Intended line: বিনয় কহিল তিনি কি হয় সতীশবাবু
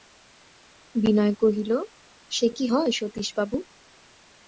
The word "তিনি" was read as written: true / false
false